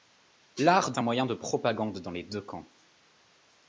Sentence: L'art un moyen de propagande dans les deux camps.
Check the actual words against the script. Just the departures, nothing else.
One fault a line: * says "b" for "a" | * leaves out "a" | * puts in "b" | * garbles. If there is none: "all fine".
all fine